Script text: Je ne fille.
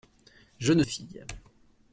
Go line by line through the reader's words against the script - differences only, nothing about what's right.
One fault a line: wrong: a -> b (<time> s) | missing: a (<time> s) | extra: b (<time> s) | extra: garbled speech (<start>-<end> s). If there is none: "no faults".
no faults